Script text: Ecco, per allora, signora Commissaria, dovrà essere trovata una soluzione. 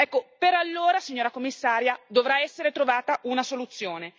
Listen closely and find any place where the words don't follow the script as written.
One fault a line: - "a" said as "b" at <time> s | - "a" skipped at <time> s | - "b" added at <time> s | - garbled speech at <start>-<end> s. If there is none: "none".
none